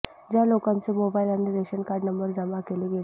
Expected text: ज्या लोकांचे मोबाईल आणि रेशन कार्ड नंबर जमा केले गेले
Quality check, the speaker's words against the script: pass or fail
pass